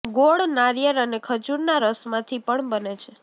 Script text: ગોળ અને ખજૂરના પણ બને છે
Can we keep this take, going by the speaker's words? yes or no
no